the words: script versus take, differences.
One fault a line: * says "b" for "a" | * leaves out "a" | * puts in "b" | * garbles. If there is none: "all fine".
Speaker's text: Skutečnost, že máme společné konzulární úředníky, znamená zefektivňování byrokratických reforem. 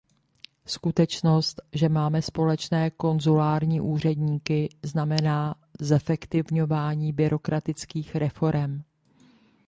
all fine